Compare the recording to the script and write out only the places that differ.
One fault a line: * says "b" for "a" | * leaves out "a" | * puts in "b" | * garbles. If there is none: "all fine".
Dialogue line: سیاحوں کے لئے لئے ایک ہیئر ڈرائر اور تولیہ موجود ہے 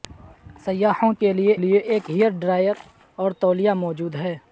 all fine